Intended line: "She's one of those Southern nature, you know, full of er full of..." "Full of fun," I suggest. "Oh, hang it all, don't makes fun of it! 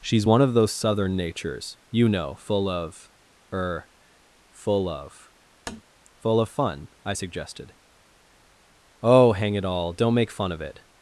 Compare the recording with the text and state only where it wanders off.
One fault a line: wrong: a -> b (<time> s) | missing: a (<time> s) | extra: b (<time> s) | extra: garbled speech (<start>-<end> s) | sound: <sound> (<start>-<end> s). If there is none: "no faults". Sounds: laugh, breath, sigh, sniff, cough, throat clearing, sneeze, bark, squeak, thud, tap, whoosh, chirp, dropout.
wrong: nature -> natures (1.2 s)
sound: tap (5.7-5.8 s)
wrong: suggest -> suggested (7.1 s)
wrong: makes -> make (10.2 s)